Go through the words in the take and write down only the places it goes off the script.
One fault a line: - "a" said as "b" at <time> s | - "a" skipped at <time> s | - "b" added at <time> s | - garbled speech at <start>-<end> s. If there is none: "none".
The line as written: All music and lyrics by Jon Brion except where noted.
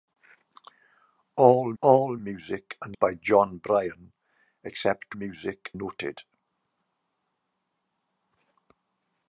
- "all" added at 1.8 s
- "lyrics" skipped at 2.9 s
- "where" said as "music" at 5.1 s